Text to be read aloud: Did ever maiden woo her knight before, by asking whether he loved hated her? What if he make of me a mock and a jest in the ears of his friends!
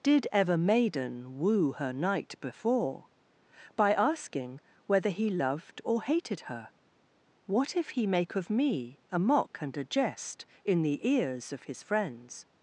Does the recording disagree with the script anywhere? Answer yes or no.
yes